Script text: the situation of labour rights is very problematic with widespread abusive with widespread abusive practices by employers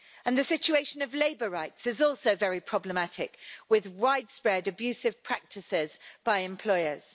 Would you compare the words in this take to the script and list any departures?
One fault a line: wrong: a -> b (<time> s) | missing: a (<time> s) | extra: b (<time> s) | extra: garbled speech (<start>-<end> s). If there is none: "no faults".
extra: also (2.0 s)
missing: with widespread abusive (5.2 s)